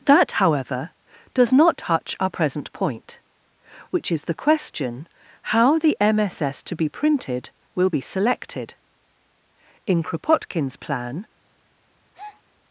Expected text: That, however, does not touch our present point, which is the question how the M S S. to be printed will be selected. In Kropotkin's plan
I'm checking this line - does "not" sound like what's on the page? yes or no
yes